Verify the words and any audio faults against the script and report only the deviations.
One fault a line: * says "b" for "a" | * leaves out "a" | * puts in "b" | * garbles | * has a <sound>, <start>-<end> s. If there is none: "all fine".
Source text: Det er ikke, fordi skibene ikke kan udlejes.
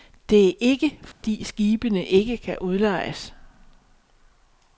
* has a dropout, 1.1-1.2 s